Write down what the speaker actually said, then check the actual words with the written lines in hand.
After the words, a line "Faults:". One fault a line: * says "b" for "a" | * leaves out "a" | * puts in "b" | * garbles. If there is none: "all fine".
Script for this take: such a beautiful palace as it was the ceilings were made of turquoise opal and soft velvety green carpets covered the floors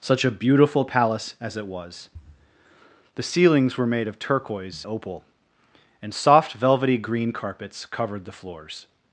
such a beautiful palace as it was the ceilings were made of turquoise opal and soft velvety green carpets covered the floors
Faults:
all fine